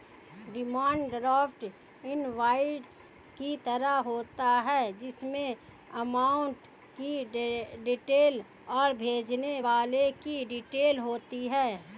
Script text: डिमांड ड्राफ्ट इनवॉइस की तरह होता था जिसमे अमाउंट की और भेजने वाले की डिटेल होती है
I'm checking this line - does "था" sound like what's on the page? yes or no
no